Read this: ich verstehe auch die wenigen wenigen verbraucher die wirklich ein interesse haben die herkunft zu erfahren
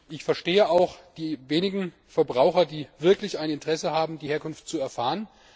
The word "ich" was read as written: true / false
true